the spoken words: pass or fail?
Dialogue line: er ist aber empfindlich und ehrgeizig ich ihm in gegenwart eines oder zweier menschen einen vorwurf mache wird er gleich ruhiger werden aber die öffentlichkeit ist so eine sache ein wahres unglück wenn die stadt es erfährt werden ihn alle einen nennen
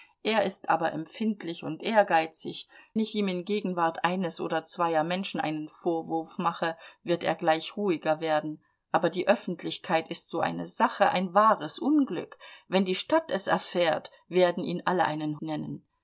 pass